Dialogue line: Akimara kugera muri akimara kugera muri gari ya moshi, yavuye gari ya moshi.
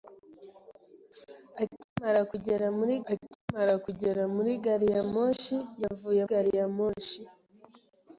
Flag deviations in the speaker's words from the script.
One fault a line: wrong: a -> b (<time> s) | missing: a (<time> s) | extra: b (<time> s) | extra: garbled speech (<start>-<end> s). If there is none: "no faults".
no faults